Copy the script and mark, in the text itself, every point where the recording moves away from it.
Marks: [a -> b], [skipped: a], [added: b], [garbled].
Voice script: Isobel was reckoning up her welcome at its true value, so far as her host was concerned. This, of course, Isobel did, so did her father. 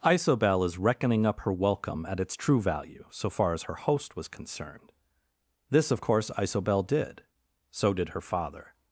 Isobel [was -> is] reckoning up her welcome at its true value, so far as her host was concerned. This, of course, Isobel did, so did her father.